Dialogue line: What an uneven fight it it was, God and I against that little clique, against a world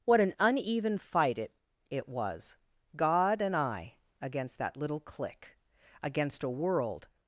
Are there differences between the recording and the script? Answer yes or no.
no